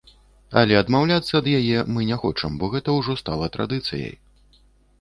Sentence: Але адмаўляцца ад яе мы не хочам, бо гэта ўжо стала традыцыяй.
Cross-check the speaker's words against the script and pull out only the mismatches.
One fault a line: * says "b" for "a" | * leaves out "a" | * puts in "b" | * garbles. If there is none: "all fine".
all fine